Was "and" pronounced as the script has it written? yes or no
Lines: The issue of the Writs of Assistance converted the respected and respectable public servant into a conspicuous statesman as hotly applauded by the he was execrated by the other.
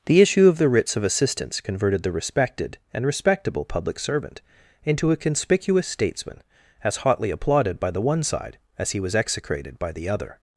yes